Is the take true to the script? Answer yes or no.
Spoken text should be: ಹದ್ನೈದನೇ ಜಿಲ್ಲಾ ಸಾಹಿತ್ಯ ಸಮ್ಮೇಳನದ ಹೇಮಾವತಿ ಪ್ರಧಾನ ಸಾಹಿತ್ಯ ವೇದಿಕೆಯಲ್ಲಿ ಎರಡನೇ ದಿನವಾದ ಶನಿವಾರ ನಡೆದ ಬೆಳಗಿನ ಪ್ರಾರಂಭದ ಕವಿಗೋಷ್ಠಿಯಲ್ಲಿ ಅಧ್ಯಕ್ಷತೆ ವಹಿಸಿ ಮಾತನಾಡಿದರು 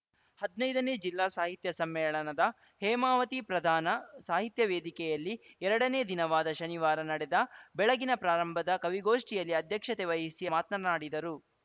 yes